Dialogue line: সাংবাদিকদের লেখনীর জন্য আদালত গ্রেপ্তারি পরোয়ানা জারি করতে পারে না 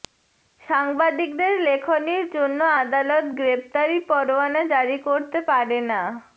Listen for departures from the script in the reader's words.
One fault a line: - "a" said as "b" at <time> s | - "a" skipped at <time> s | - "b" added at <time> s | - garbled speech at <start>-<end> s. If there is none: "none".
none